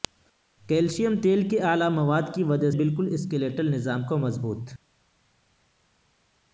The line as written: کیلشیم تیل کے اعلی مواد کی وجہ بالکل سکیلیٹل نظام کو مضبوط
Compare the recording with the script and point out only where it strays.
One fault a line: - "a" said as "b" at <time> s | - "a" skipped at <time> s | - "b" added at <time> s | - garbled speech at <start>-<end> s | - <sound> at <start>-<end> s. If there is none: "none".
none